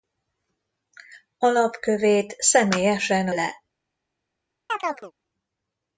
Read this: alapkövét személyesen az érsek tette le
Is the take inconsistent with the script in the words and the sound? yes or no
yes